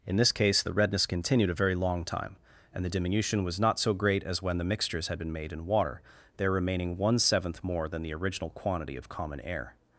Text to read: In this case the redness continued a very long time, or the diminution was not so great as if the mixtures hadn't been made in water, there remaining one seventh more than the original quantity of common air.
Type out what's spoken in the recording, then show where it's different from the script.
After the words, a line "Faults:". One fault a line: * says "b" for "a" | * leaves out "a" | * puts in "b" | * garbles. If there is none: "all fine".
In this case the redness continued a very long time, and the diminution was not so great as when the mixtures had been made in water, there remaining one seventh more than the original quantity of common air.
Faults:
* says "and" for "or"
* says "when" for "if"
* says "had" for "hadn't"